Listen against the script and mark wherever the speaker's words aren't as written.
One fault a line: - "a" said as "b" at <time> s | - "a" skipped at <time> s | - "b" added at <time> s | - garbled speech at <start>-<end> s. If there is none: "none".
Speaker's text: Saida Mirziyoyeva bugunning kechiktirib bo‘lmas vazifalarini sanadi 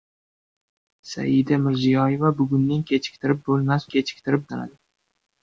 - "vazifalarini" said as "kechiktirib" at 4.0 s